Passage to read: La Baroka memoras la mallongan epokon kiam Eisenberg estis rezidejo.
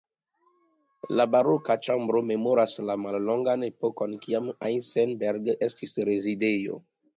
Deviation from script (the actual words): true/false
true